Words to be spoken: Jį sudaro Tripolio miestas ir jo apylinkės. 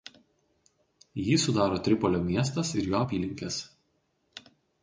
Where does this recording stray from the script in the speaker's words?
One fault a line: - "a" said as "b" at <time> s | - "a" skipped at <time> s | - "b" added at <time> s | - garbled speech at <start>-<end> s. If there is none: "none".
none